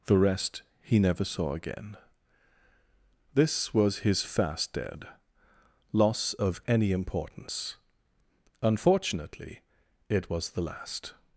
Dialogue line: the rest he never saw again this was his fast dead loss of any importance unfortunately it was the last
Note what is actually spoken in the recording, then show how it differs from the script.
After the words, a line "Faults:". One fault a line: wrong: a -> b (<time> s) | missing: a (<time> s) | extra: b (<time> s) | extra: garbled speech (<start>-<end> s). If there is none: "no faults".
the rest he never saw again this was his fast dead loss of any importance unfortunately it was the last
Faults:
no faults